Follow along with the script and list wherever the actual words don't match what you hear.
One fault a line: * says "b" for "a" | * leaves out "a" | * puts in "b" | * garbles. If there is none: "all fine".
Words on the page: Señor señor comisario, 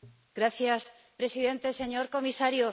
* puts in "presidente"